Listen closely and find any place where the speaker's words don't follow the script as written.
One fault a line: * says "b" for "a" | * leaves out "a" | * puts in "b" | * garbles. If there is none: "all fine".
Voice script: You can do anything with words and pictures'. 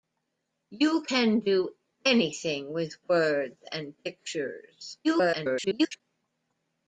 * garbles